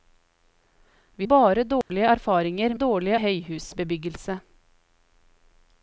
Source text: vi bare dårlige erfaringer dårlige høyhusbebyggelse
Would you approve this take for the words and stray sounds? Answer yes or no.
no